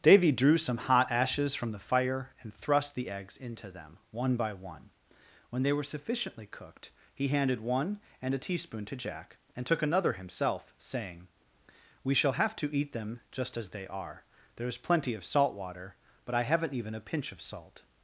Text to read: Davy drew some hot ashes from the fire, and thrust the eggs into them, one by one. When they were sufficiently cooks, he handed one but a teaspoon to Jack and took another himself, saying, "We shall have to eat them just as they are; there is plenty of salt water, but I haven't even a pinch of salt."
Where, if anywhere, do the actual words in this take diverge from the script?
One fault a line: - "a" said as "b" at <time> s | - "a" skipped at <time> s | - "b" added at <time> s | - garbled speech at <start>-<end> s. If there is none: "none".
- "cooks" said as "cooked" at 6.5 s
- "but" said as "and" at 8.2 s